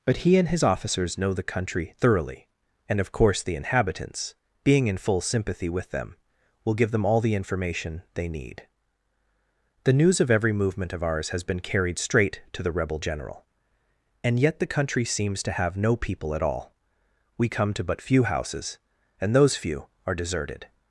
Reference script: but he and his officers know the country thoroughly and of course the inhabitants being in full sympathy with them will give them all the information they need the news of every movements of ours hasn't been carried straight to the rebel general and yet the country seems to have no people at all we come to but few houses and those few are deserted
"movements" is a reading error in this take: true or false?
true